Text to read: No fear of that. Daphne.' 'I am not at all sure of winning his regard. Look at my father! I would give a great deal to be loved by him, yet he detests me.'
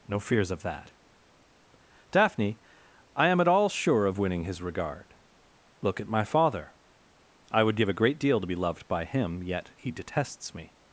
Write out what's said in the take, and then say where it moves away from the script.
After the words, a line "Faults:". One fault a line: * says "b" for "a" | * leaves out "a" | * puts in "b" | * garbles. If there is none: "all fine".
No fears of that. Daphne.' 'I am at all sure of winning his regard. Look at my father! I would give a great deal to be loved by him, yet he detests me.'
Faults:
* says "fears" for "fear"
* leaves out "not"